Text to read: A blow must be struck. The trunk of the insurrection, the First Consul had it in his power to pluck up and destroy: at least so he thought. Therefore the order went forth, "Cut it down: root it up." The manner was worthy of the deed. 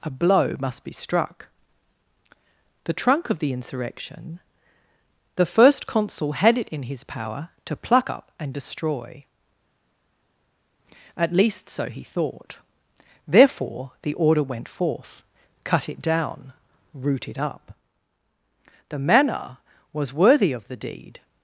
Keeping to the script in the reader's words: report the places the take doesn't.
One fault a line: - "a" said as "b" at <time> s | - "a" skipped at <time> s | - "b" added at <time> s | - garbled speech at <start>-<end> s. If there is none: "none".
none